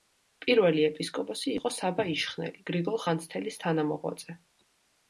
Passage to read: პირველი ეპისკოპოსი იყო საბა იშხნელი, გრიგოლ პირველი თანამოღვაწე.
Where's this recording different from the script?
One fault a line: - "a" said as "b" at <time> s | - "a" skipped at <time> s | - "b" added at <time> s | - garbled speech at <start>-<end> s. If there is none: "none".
- "პირველი" said as "ხანძთელის" at 3.1 s